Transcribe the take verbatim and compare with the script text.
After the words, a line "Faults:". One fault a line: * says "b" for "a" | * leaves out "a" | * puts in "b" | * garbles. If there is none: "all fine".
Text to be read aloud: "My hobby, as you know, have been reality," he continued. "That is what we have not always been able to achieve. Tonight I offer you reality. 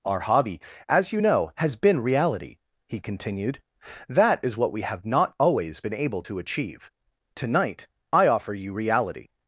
"Our hobby, as you know, has been reality," he continued. "That is what we have not always been able to achieve. Tonight I offer you reality.
Faults:
* says "Our" for "My"
* says "has" for "have"